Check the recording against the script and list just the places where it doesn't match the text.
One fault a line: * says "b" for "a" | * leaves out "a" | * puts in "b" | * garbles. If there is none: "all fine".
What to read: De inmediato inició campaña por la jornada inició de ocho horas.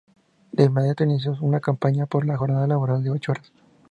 * puts in "una"
* says "laboral" for "inició"